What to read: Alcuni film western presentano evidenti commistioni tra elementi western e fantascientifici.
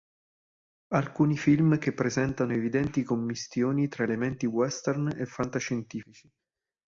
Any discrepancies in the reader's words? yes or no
yes